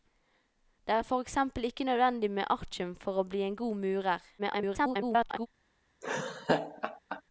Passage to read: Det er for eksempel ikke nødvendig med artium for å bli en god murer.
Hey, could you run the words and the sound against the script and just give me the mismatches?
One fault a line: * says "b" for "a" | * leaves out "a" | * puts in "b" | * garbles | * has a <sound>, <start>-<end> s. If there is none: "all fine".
* garbles
* has a laugh, 6.0-7.2 s